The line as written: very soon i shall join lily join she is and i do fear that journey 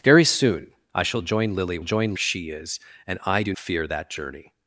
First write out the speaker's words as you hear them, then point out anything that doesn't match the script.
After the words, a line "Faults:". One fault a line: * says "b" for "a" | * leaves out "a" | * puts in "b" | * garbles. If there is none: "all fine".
very soon i shall join lily join she is and i do fear that journey
Faults:
all fine